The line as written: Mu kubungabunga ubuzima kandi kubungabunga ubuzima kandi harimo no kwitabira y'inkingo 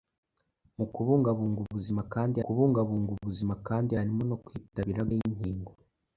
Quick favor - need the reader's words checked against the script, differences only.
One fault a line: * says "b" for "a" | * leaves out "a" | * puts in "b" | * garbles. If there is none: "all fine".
all fine